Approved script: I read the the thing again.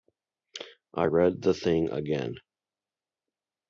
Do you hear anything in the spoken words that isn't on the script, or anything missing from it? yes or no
yes